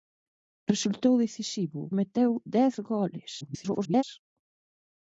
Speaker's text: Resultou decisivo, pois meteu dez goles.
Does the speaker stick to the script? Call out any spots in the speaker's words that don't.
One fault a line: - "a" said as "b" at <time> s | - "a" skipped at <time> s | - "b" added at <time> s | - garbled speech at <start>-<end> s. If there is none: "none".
- "pois" skipped at 1.8 s
- garbled speech at 3.4-4.0 s